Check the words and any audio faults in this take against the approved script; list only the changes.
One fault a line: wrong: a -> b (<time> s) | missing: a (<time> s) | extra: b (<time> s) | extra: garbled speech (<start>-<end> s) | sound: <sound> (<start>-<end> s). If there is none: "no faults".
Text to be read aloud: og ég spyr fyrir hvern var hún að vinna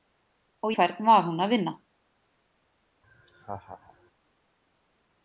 missing: ég spyr fyrir (0.7 s)
sound: laugh (3.0-4.1 s)